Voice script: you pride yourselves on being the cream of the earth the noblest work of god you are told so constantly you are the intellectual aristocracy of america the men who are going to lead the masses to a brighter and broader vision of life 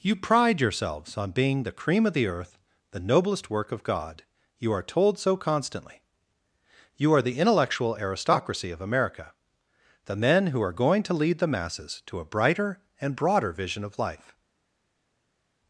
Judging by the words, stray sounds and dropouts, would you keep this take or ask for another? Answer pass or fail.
pass